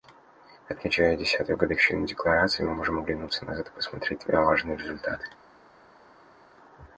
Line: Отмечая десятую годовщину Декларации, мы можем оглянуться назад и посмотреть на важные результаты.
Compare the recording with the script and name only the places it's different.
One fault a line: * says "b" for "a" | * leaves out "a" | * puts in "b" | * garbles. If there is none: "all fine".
all fine